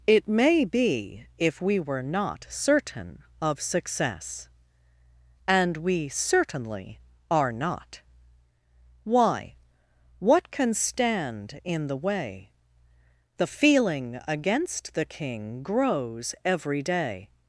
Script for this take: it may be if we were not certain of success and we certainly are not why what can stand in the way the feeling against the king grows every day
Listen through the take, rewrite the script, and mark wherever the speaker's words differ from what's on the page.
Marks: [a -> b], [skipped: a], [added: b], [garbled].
it may be if we were not certain of success and we certainly are not why what can stand in the way the feeling against the king grows every day